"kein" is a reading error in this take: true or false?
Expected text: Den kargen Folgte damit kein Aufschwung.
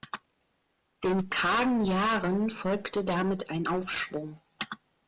true